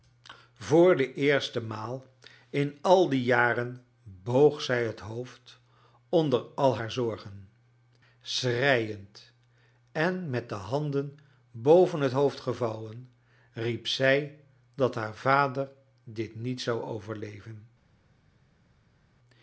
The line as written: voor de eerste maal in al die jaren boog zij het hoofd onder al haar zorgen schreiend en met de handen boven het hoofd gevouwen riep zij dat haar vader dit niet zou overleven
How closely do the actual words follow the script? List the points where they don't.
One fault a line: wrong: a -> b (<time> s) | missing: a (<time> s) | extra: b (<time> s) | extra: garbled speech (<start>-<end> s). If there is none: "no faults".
no faults